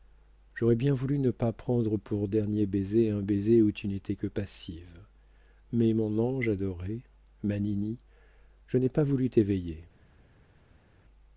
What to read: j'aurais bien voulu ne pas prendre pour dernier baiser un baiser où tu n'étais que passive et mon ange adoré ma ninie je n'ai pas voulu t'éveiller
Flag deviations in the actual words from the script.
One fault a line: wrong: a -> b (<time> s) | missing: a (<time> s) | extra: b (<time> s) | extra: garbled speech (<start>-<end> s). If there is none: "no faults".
wrong: et -> mais (5.7 s)